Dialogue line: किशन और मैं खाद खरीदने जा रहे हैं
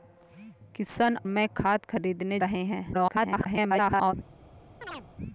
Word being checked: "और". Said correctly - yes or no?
no